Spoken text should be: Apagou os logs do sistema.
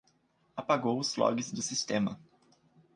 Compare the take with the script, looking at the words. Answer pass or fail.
pass